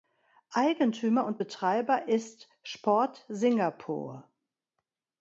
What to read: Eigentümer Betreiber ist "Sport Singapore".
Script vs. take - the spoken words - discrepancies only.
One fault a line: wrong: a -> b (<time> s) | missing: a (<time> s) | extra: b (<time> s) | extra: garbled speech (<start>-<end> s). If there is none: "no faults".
extra: und (1.2 s)